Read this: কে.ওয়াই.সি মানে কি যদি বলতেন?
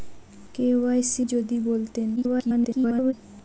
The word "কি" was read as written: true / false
false